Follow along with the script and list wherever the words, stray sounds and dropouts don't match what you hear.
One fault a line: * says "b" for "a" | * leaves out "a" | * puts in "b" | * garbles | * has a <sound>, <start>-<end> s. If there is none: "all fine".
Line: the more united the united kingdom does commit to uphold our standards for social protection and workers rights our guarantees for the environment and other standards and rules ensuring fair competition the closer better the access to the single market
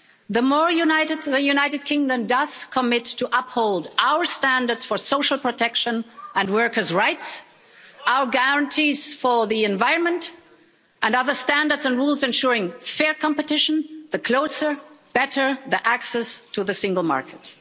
all fine